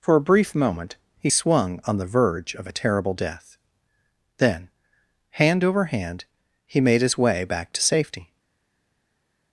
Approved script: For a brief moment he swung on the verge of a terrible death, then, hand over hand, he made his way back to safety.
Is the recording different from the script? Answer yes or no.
no